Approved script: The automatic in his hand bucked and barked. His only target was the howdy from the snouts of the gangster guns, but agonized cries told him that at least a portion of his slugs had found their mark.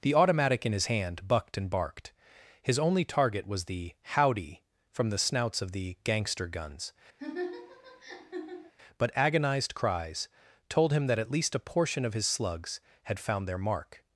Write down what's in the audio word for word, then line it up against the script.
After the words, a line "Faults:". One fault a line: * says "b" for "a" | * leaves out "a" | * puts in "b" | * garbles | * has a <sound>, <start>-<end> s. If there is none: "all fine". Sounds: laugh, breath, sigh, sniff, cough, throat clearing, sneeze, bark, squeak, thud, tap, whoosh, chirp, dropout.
The automatic in his hand bucked and barked. His only target was the howdy from the snouts of the gangster guns, but agonized cries told him that at least a portion of his slugs had found their mark.
Faults:
* has a laugh, 7.2-8.7 s